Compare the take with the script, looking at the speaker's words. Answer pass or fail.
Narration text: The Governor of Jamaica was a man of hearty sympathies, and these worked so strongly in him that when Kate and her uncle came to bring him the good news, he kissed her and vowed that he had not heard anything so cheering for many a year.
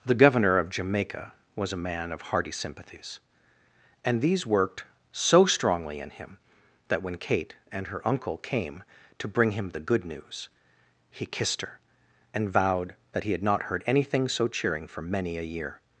pass